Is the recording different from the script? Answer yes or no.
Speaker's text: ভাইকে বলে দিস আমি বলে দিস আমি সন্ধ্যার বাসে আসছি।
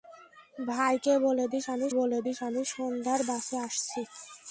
no